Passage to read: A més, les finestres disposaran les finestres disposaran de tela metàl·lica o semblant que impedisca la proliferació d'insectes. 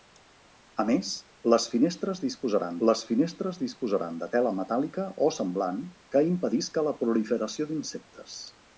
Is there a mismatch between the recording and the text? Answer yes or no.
no